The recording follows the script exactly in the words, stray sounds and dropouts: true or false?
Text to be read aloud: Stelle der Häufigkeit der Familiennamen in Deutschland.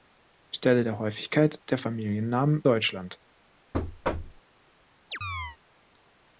false